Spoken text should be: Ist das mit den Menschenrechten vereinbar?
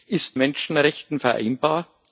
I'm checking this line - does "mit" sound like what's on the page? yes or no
no